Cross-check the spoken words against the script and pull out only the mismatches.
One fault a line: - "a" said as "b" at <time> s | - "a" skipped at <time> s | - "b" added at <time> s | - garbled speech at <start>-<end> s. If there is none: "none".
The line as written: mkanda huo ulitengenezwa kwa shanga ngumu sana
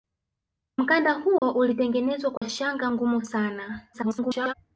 - garbled speech at 3.9-4.5 s